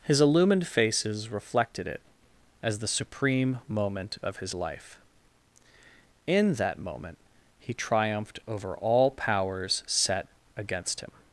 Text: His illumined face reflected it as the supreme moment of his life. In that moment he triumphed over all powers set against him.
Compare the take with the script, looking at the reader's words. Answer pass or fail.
fail